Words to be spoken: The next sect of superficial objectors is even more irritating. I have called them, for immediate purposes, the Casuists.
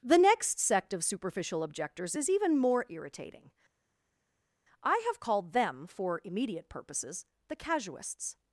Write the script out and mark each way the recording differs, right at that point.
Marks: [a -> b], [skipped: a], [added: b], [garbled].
The next sect of superficial objectors is even more irritating. I have called them, for immediate purposes, the Casuists.